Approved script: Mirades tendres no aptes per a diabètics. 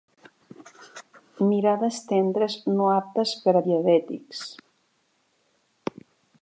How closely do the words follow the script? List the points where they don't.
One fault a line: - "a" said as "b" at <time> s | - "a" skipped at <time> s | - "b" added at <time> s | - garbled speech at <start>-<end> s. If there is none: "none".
none